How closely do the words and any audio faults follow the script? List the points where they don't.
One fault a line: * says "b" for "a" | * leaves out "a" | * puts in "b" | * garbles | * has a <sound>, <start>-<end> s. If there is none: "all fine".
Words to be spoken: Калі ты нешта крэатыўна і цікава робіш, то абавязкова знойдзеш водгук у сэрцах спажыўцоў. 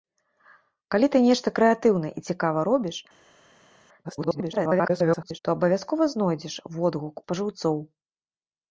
* garbles
* leaves out "у сэрцах"